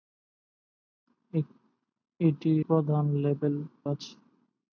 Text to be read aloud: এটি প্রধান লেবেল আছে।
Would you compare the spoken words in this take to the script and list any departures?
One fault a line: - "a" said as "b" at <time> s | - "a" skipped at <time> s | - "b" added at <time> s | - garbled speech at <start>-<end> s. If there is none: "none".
none